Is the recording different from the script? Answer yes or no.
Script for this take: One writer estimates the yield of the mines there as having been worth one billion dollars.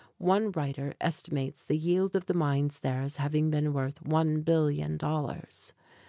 no